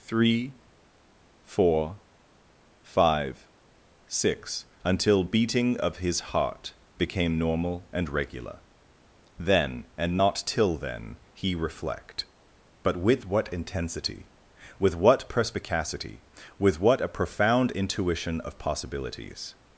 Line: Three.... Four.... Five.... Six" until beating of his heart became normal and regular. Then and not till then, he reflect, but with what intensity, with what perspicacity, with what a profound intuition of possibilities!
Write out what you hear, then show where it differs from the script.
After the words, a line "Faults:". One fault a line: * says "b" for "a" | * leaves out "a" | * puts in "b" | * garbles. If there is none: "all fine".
Three.... Four.... Five.... Six" until beating of his heart became normal and regular. Then and not till then, he reflect, but with what intensity, with what perspicacity, with what a profound intuition of possibilities!
Faults:
all fine